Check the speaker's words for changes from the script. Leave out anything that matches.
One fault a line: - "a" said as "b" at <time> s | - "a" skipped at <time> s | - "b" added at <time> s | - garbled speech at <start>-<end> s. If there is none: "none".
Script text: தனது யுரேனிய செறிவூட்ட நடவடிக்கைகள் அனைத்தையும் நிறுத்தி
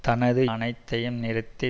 - "யுரேனிய செறிவூட்ட நடவடிக்கைகள்" skipped at 0.4 s